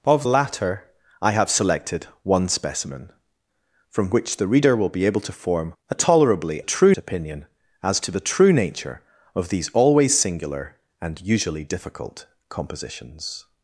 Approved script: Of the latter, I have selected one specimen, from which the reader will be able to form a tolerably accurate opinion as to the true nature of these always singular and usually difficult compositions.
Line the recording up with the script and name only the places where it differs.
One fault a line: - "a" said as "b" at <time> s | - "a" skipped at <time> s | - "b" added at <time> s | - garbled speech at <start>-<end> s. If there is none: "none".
- "the" skipped at 0.2 s
- "accurate" said as "true" at 6.6 s